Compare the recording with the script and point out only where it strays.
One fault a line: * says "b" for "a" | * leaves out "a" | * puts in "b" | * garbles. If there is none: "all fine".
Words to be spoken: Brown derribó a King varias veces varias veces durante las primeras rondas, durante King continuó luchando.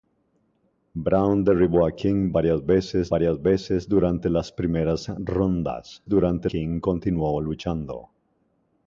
all fine